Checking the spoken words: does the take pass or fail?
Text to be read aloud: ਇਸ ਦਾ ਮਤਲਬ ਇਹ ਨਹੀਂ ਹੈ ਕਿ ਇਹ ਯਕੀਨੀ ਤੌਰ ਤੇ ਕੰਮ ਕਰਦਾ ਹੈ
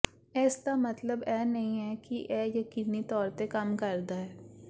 pass